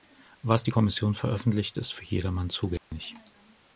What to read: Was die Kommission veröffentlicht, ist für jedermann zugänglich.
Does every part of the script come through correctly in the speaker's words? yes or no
yes